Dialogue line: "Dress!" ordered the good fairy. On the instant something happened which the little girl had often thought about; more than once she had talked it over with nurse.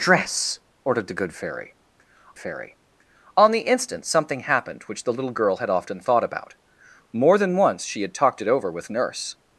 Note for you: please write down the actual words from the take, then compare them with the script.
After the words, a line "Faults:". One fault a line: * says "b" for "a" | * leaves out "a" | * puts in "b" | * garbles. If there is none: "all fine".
"Dress!" ordered the good fairy fairy. On the instant something happened which the little girl had often thought about; more than once she had talked it over with nurse.
Faults:
* puts in "fairy"